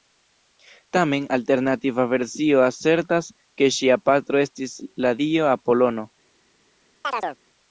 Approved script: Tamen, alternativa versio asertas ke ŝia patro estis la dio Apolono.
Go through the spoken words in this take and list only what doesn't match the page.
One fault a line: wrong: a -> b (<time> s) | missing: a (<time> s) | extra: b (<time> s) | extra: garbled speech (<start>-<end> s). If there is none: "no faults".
no faults